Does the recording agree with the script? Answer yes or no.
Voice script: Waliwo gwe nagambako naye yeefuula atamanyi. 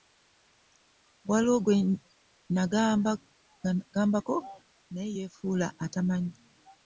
yes